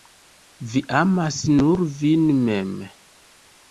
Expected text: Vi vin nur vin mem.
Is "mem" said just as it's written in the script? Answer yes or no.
yes